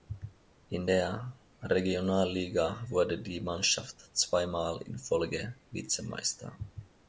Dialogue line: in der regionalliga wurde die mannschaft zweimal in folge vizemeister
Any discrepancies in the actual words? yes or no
no